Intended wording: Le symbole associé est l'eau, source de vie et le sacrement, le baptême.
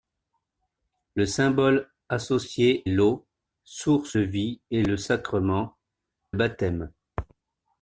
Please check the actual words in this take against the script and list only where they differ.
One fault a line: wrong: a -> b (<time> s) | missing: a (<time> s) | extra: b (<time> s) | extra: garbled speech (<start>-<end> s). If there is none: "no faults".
missing: est (2.9 s)
missing: de (4.2 s)
missing: le (5.8 s)